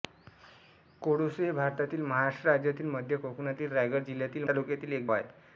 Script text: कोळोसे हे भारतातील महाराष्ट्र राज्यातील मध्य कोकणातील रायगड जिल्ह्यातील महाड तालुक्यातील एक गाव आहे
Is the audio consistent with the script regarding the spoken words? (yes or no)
no